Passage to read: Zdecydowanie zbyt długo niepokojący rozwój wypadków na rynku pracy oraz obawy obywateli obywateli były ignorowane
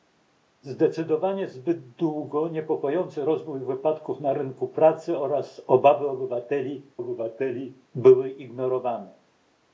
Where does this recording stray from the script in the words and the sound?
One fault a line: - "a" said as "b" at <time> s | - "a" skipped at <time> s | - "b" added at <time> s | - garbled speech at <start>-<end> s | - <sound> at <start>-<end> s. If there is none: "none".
none